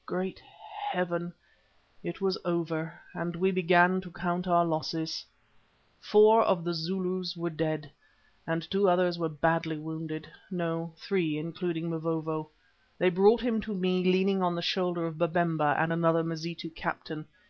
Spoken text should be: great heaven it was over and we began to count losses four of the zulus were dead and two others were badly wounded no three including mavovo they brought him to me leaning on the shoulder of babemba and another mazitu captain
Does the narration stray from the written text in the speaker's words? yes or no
yes